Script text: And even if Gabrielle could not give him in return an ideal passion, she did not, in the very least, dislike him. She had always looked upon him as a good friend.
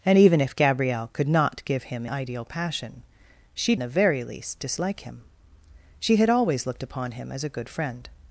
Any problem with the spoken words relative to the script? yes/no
yes